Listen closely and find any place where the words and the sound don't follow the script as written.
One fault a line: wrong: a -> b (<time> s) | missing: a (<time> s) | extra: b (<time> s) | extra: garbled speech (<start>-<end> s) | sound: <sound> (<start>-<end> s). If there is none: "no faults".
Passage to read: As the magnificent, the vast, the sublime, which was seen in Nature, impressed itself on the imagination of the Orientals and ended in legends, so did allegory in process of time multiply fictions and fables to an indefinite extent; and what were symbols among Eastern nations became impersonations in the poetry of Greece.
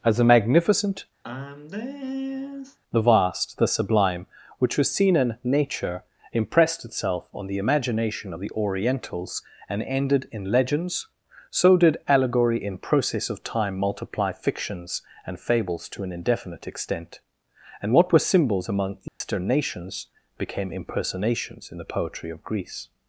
sound: sigh (1.2-2.8 s)
sound: dropout (19.1-19.2 s)